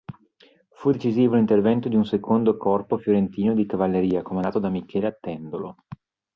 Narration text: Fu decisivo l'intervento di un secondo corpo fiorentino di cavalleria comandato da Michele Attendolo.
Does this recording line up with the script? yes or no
yes